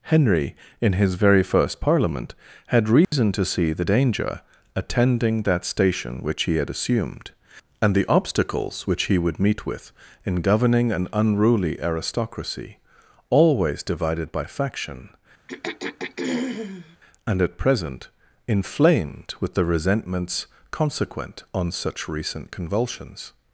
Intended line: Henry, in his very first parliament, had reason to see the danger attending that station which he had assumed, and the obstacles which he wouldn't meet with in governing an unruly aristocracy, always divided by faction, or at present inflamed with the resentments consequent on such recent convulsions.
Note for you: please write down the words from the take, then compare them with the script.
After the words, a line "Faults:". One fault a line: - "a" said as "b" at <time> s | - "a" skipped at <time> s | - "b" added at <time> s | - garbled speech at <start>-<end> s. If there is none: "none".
Henry, in his very first parliament, had reason to see the danger attending that station which he had assumed, and the obstacles which he would meet with in governing an unruly aristocracy, always divided by faction, and at present inflamed with the resentments consequent on such recent convulsions.
Faults:
- "wouldn't" said as "would" at 9.2 s
- "or" said as "and" at 17.3 s